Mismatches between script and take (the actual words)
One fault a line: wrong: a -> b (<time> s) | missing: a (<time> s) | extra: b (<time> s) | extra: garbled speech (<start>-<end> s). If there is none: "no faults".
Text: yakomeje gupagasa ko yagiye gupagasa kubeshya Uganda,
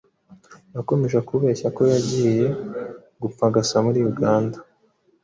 wrong: gupagasa -> kubeshya (1.3 s)
wrong: kubeshya -> muri (3.9 s)